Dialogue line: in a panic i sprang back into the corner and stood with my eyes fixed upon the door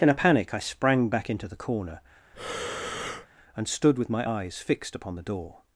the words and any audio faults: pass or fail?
fail